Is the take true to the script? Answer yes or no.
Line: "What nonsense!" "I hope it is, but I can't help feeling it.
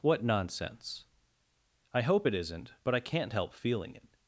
no